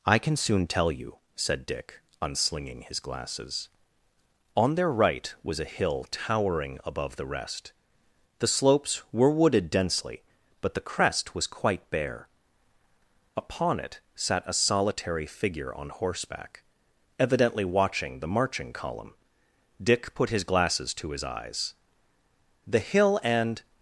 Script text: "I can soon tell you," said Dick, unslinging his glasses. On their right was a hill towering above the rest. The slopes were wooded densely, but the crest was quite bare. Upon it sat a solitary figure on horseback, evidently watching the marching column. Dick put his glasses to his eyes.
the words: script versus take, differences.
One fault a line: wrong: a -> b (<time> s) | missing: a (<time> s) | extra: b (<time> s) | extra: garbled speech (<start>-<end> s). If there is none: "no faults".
extra: The hill and (22.7 s)